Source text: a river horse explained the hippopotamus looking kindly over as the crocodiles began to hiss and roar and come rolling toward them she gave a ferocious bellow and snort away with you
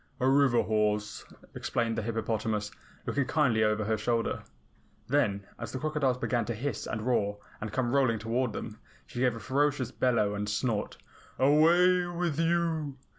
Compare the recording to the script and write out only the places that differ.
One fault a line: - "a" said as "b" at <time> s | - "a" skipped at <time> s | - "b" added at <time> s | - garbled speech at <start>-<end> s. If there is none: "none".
- "her shoulder then" added at 3.9 s